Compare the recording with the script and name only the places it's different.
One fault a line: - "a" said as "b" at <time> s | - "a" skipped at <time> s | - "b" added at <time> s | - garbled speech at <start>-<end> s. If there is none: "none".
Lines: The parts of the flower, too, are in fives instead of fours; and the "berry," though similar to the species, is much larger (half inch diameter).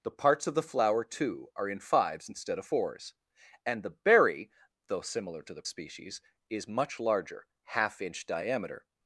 none